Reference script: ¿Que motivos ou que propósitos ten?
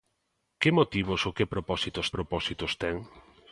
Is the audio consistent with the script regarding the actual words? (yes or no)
no